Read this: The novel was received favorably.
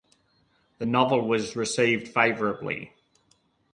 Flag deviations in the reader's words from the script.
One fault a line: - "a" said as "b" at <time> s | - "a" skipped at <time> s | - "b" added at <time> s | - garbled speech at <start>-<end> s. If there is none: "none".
none